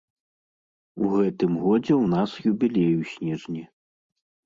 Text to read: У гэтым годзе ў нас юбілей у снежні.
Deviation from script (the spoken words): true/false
false